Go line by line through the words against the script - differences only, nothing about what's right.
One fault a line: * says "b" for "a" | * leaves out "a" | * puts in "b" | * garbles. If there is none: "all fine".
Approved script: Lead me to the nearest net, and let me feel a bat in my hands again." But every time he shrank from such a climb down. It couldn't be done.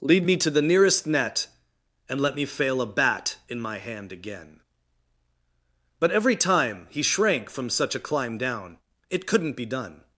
* says "fail" for "feel"
* says "hand" for "hands"